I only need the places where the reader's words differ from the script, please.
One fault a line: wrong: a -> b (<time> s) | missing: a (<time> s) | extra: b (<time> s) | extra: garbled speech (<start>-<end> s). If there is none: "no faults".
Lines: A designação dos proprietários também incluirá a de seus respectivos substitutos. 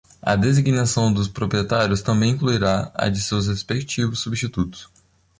no faults